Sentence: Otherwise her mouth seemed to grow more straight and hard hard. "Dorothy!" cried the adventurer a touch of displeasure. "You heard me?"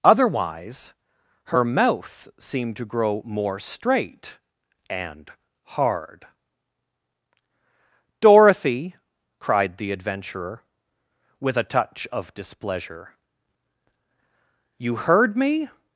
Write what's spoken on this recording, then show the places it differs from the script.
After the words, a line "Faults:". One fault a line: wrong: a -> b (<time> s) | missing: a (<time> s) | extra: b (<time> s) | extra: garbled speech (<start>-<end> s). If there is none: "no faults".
Otherwise her mouth seemed to grow more straight and hard. "Dorothy!" cried the adventurer with a touch of displeasure. "You heard me?"
Faults:
missing: hard (6.2 s)
extra: with (11.4 s)